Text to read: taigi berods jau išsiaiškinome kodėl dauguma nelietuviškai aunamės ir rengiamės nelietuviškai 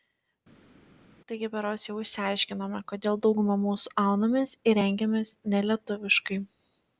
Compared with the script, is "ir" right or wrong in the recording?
right